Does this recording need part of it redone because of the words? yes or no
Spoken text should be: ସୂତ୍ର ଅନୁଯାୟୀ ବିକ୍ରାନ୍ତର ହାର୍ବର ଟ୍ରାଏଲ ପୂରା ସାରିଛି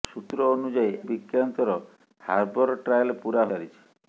no